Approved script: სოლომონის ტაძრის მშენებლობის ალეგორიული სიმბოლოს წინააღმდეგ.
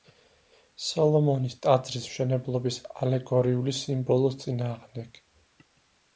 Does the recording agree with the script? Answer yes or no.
yes